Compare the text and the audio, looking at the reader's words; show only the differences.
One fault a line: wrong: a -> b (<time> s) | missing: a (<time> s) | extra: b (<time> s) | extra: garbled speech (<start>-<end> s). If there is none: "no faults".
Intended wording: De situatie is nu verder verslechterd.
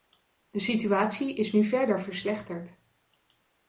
no faults